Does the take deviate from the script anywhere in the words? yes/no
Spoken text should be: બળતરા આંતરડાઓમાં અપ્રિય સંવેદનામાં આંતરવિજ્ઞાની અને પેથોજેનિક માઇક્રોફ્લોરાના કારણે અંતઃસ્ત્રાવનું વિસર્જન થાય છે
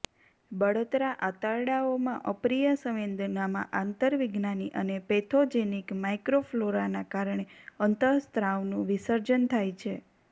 no